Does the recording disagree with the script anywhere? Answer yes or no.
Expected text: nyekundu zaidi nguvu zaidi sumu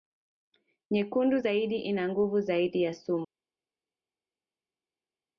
yes